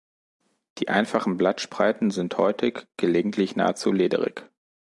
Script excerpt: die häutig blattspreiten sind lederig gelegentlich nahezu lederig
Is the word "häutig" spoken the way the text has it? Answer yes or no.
no